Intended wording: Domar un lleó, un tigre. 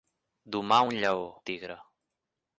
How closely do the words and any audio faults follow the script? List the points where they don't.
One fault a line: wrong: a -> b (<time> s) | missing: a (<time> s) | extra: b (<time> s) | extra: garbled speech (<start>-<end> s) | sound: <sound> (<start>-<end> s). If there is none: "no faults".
missing: un (1.4 s)